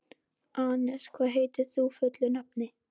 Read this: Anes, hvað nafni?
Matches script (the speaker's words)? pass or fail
fail